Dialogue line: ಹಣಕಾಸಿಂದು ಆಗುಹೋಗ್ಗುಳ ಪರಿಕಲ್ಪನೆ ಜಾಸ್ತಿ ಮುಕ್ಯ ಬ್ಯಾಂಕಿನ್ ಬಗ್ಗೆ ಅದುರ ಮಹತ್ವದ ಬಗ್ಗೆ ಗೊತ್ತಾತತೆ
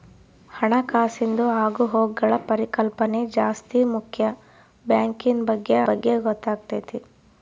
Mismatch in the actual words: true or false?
true